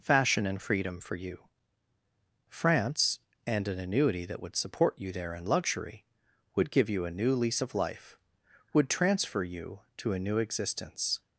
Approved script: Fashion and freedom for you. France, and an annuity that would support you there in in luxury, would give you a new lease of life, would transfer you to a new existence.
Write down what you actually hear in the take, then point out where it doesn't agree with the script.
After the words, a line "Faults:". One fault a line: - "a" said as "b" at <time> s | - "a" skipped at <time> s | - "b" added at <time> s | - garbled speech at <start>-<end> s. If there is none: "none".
Fashion and freedom for you. France, and an annuity that would support you there in luxury, would give you a new lease of life, would transfer you to a new existence.
Faults:
- "in" skipped at 5.5 s